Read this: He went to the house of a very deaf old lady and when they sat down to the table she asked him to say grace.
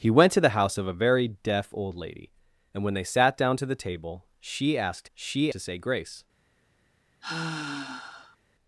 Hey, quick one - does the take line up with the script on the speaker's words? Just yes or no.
no